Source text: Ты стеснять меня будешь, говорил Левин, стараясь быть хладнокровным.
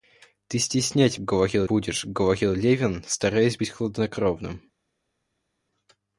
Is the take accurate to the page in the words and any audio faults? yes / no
no